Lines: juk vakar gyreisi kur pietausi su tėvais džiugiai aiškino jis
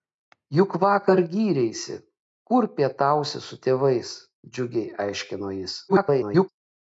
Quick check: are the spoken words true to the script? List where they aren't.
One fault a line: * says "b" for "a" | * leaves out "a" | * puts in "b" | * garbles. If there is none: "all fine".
* garbles